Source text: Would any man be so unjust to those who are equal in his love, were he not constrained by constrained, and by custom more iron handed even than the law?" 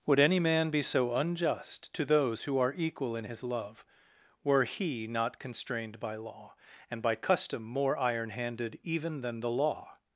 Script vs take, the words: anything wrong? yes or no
yes